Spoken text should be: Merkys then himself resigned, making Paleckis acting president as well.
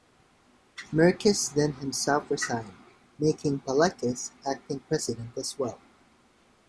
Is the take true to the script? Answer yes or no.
yes